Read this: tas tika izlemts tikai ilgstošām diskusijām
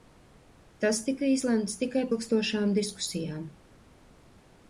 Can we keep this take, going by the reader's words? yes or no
yes